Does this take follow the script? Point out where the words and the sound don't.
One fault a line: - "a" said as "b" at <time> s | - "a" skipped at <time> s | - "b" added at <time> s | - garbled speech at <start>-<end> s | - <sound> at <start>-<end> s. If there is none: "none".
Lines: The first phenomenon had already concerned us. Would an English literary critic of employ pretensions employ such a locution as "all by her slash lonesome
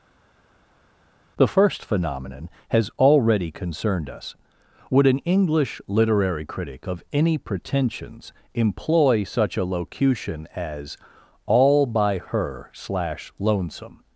- "had" said as "has" at 2.7 s
- "employ" said as "any" at 7.1 s